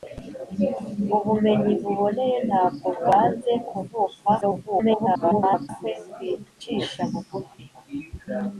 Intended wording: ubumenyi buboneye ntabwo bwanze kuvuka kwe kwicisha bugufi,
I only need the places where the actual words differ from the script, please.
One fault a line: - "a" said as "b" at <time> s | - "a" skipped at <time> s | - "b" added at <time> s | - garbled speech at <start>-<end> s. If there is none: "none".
- garbled speech at 4.4-5.7 s